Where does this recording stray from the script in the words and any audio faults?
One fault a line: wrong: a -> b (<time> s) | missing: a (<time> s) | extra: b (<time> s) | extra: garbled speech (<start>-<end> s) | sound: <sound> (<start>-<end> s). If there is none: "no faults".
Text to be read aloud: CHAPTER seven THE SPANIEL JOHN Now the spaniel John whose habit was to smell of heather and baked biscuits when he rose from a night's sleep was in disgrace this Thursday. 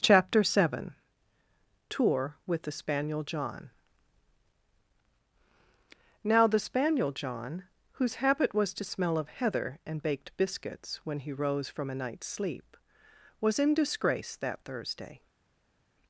extra: TOUR WITH (1.9 s)
wrong: this -> that (14.4 s)